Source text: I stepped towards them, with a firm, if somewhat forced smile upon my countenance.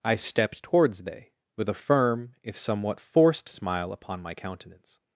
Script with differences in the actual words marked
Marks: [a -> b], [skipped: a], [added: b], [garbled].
I stepped towards [them, -> they] with a firm, if somewhat forced smile upon my countenance.